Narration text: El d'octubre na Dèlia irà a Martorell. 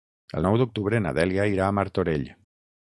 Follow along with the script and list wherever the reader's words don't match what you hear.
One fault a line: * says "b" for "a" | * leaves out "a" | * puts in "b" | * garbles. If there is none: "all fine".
* puts in "nou"